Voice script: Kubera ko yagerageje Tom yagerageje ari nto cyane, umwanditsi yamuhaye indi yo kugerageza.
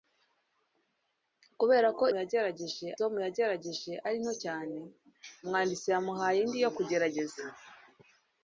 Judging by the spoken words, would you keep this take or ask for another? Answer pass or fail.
pass